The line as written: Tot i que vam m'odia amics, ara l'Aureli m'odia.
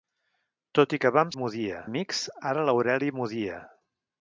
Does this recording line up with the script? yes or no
yes